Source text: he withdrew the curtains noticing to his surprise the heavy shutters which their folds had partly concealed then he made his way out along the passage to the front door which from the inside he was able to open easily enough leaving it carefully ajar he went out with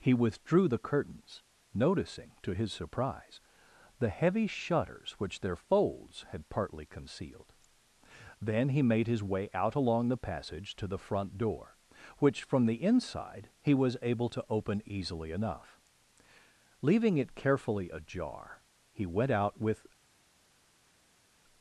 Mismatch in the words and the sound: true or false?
false